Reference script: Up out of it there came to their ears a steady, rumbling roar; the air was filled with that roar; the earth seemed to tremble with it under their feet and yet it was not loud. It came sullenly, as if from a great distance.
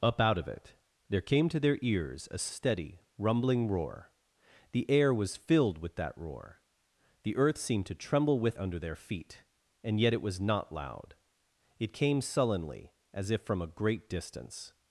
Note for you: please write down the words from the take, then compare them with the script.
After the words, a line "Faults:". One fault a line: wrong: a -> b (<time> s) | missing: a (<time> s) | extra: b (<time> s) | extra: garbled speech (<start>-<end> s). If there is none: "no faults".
Up out of it there came to their ears a steady, rumbling roar; the air was filled with that roar; the earth seemed to tremble with under their feet and yet it was not loud. It came sullenly, as if from a great distance.
Faults:
missing: it (8.6 s)